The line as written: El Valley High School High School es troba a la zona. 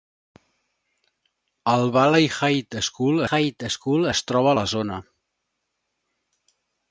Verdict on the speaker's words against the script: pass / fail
pass